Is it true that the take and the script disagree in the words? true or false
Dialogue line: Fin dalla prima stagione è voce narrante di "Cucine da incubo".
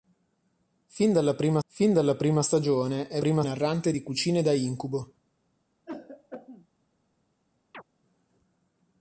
true